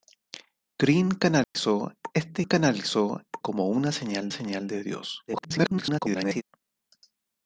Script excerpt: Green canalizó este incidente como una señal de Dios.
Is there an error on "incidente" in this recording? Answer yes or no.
yes